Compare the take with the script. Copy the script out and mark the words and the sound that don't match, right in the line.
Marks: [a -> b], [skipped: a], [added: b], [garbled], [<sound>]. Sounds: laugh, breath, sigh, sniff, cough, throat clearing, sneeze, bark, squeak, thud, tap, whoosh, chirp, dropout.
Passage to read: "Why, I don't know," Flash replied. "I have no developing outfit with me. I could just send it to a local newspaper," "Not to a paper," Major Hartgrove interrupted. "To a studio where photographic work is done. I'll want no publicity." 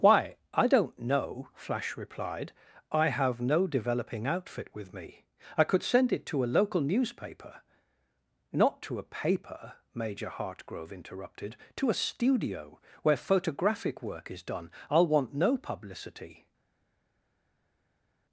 "Why, I don't know," Flash replied. "I have no developing outfit with me. I could [skipped: just] send it to a local newspaper," "Not to a paper," Major Hartgrove interrupted. "To a studio where photographic work is done. I'll want no publicity."